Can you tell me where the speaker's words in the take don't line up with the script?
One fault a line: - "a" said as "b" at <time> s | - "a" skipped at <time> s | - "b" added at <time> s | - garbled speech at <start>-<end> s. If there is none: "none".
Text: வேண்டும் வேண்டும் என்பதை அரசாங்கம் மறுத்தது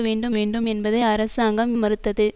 none